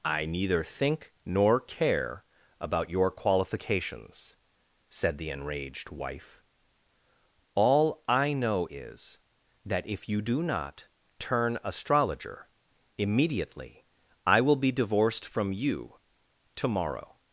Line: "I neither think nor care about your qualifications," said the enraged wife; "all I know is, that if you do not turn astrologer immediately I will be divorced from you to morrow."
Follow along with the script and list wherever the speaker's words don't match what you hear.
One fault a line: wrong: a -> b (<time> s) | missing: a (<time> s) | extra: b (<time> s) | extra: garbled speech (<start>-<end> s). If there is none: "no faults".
no faults